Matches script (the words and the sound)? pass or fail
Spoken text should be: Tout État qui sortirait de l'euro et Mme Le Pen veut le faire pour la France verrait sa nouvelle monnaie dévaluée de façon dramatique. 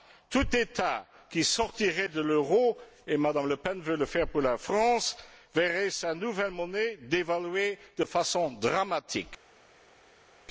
pass